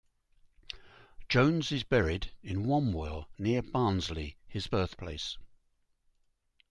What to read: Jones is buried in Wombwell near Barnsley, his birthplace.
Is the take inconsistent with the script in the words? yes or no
no